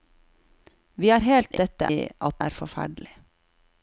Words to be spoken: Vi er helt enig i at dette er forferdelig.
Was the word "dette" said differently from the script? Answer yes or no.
yes